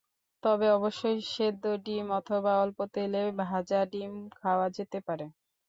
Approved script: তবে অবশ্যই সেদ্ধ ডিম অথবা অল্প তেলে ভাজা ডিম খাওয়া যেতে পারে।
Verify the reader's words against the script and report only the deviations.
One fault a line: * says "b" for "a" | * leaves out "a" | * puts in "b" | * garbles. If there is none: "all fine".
all fine